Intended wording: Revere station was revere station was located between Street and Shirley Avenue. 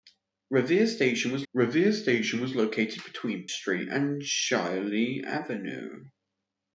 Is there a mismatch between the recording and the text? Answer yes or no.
no